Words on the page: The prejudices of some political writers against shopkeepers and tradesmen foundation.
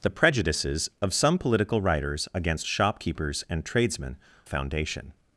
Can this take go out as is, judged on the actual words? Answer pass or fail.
pass